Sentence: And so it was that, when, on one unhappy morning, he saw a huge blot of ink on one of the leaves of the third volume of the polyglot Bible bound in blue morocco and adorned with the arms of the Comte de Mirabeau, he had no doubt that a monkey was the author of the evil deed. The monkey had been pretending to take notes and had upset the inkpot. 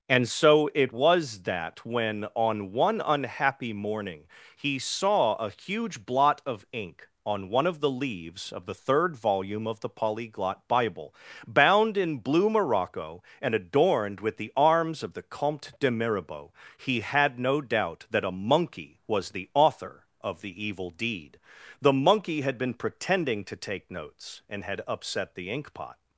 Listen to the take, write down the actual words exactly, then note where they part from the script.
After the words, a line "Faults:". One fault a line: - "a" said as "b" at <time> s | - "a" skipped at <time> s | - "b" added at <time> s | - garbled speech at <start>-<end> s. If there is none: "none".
And so it was that, when, on one unhappy morning, he saw a huge blot of ink on one of the leaves of the third volume of the polyglot Bible bound in blue morocco and adorned with the arms of the Comte de Mirabeau, he had no doubt that a monkey was the author of the evil deed. The monkey had been pretending to take notes and had upset the inkpot.
Faults:
none